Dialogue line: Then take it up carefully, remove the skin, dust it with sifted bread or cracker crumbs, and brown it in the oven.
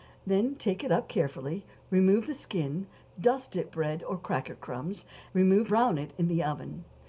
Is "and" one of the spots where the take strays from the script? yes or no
yes